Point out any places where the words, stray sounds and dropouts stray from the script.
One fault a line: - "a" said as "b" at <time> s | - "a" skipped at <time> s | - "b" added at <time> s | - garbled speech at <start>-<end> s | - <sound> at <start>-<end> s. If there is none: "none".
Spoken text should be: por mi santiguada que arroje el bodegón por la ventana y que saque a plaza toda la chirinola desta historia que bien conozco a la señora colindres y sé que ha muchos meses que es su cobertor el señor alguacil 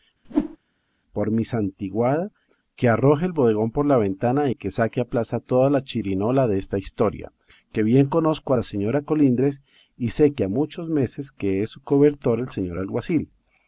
- whoosh at 0.2-0.6 s